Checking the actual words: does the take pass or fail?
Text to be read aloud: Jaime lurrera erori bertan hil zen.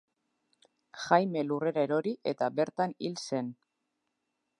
fail